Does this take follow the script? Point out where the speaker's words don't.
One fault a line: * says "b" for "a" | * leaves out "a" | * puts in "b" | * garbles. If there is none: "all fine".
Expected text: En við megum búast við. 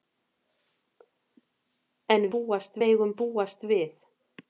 * says "búast" for "við"